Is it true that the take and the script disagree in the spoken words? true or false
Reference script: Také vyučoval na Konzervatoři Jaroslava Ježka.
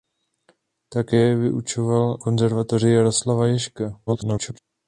true